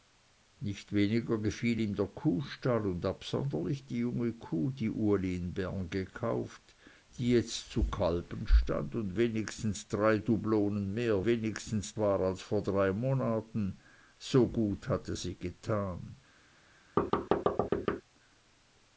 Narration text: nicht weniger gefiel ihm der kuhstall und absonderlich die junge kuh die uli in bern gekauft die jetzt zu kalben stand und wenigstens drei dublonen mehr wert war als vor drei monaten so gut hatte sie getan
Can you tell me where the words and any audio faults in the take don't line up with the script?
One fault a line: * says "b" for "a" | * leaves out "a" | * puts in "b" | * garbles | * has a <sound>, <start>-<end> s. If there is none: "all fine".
* says "wenigstens" for "wert"
* has a thud, 17.0-18.0 s